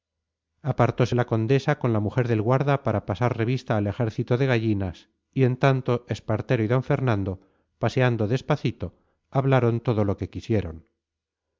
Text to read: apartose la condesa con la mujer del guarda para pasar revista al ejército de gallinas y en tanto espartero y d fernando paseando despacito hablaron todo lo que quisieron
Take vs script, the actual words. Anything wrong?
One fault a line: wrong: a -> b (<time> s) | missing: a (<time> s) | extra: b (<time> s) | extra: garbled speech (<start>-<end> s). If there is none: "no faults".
no faults